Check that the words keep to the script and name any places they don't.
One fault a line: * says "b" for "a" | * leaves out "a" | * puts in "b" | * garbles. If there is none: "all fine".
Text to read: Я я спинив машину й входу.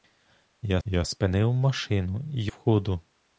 all fine